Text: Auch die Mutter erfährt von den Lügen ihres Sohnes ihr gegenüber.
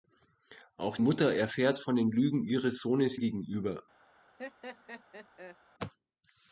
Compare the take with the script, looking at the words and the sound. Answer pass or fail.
fail